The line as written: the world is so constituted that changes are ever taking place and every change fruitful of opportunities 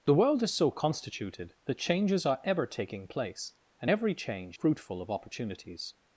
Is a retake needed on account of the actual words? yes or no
no